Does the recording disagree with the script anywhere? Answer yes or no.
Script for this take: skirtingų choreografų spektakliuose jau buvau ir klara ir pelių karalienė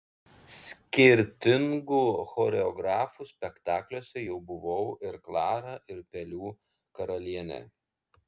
no